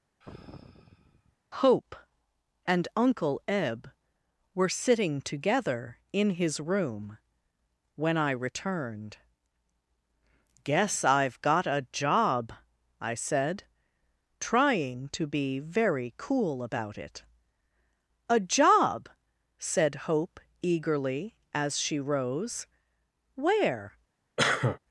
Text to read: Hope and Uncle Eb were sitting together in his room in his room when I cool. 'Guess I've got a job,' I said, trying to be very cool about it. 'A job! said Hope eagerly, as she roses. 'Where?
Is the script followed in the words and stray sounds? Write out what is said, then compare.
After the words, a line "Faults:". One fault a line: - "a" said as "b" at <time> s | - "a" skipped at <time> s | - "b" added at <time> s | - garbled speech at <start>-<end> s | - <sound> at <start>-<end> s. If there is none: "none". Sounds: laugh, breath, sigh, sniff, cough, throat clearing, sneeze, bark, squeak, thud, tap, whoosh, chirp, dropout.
Hope and Uncle Eb were sitting together in his room when I returned. 'Guess I've got a job,' I said, trying to be very cool about it. 'A job! said Hope eagerly, as she rose. 'Where?
Faults:
- sigh at 0.2-1.4 s
- "in his room" skipped at 7.2 s
- "cool" said as "returned" at 8.3 s
- "roses" said as "rose" at 22.0 s
- cough at 24.4-24.8 s